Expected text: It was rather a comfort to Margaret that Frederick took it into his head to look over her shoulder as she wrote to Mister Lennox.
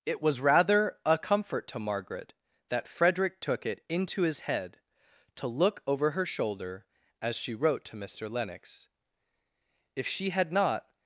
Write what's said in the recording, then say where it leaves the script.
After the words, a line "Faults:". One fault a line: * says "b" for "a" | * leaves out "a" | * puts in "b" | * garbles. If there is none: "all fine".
It was rather a comfort to Margaret that Frederick took it into his head to look over her shoulder as she wrote to Mister Lennox. If she had not
Faults:
* puts in "If she had not"